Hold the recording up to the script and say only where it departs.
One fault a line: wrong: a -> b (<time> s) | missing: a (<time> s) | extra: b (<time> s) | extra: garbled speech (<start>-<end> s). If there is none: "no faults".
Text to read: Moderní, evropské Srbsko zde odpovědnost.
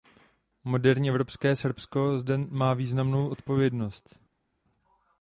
extra: má významnou (2.4 s)